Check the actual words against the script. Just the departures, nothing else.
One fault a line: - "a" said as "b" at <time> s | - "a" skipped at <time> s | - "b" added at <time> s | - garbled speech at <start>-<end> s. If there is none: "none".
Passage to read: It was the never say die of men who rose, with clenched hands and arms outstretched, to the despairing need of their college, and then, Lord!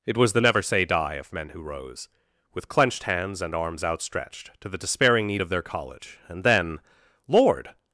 none